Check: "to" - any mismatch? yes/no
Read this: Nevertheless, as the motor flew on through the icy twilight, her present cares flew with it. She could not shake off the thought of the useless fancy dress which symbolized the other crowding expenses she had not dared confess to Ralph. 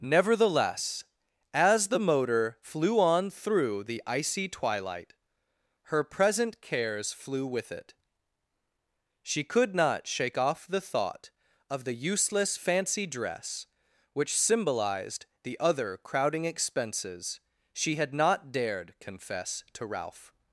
no